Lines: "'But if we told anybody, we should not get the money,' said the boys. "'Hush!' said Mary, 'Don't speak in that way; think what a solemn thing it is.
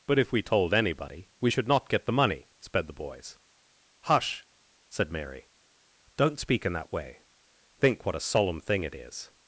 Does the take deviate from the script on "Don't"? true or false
false